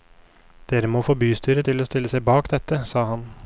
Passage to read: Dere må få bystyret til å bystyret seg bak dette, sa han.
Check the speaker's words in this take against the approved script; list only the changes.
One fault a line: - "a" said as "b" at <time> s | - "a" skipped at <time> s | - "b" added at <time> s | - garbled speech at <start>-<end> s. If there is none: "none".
- "bystyret" said as "stille" at 1.9 s